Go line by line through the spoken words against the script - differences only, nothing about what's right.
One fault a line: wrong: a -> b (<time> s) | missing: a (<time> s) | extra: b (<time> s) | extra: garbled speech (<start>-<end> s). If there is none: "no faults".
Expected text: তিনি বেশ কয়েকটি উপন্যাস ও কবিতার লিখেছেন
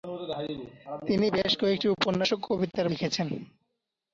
no faults